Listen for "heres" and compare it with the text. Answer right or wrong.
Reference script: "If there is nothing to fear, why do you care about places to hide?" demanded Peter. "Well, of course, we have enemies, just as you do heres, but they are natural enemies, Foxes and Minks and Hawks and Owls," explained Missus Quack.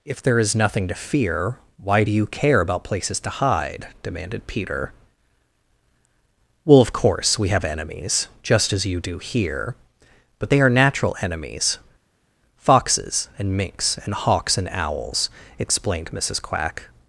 wrong